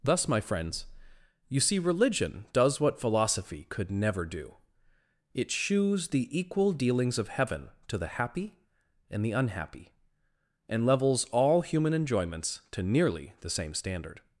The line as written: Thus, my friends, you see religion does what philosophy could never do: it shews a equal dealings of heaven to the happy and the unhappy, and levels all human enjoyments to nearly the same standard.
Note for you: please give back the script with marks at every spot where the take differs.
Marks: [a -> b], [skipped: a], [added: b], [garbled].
Thus, my friends, you see religion does what philosophy could never do: it shews [a -> the] equal dealings of heaven to the happy and the unhappy, and levels all human enjoyments to nearly the same standard.